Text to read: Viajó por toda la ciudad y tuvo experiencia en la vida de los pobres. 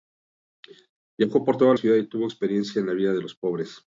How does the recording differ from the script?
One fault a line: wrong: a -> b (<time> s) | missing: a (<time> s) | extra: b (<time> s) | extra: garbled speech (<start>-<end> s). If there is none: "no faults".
missing: la (1.8 s)